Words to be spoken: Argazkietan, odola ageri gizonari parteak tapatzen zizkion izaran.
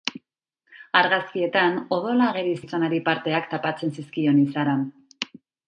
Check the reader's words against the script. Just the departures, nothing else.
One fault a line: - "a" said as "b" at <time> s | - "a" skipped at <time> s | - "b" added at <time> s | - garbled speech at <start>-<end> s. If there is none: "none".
none